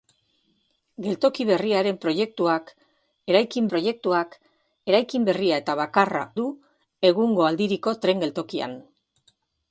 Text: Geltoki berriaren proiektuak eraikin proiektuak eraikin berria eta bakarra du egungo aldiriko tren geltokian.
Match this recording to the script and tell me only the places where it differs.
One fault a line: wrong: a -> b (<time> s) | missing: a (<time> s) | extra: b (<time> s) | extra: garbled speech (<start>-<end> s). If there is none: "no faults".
no faults